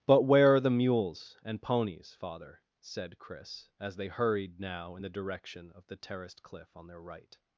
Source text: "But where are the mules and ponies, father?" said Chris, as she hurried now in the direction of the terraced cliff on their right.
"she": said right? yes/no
no